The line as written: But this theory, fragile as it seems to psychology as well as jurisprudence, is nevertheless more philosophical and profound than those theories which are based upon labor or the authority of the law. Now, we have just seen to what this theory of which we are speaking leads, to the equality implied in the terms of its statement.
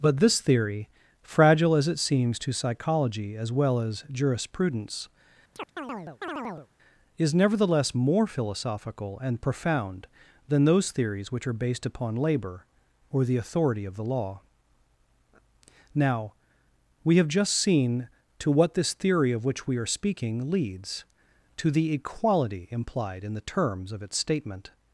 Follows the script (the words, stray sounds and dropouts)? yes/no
no